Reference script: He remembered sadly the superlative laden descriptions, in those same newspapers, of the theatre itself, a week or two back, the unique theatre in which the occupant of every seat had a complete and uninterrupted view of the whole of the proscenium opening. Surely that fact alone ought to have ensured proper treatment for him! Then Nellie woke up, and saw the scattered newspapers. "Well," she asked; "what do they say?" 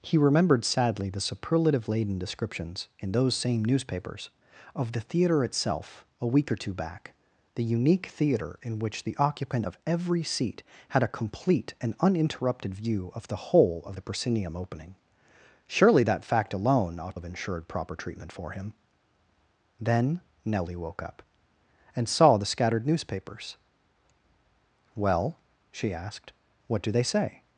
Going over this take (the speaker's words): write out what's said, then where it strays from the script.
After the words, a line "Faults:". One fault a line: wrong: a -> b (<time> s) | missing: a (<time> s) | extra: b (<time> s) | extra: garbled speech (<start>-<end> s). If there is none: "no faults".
He remembered sadly the superlative laden descriptions, in those same newspapers, of the theatre itself, a week or two back, the unique theatre in which the occupant of every seat had a complete and uninterrupted view of the whole of the proscenium opening. Surely that fact alone ought have ensured proper treatment for him! Then Nellie woke up, and saw the scattered newspapers. "Well," she asked; "what do they say?"
Faults:
missing: to (17.2 s)